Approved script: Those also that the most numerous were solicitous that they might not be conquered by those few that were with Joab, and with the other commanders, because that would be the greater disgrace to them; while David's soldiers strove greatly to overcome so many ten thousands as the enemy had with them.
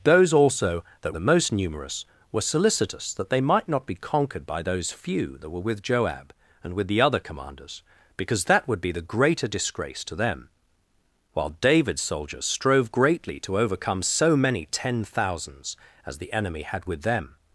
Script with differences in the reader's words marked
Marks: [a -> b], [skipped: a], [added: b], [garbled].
Those also that the most numerous were solicitous that they might not be conquered by those few that were with Joab, and with the other commanders, because that would be the greater disgrace to them; while David's soldiers strove greatly to overcome so many ten thousands as the enemy had with them.